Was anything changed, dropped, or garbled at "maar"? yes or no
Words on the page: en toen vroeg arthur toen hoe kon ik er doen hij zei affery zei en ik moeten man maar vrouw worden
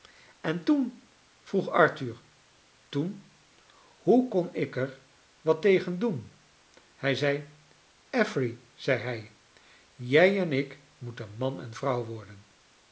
yes